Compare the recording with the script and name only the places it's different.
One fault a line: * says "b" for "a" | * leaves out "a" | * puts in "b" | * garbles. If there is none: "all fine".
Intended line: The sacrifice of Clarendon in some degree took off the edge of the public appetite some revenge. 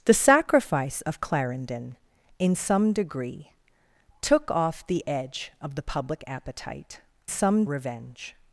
all fine